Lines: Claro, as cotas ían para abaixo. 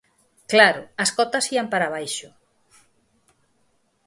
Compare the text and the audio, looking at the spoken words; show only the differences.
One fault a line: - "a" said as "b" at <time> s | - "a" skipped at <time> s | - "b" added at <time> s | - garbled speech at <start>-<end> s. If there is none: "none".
none